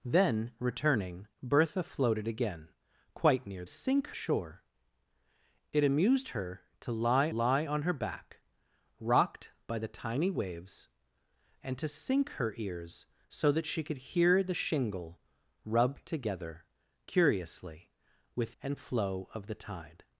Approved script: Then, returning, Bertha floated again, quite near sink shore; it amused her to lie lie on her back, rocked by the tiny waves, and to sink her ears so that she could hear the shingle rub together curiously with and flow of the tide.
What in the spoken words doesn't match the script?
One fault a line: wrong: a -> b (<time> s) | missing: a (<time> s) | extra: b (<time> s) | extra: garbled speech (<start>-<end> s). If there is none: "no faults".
no faults